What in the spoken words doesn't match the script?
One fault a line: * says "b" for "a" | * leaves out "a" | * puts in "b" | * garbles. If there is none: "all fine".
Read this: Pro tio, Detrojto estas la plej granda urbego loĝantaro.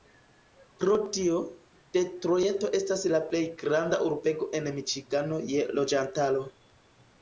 * puts in "en Miĉigano je"